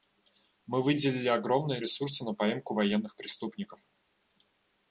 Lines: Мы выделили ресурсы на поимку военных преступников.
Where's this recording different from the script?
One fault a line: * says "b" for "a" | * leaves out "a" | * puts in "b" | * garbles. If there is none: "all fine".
* puts in "огромные"